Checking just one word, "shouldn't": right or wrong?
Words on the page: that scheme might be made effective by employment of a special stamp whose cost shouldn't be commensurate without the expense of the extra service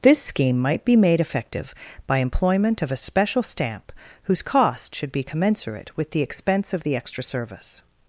wrong